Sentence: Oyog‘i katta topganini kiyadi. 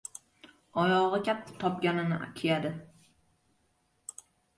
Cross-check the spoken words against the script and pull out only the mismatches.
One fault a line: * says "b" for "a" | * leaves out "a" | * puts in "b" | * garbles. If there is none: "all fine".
all fine